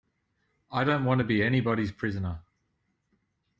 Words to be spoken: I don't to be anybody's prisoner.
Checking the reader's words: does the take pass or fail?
fail